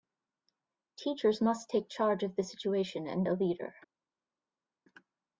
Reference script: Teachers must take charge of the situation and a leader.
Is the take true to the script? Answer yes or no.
yes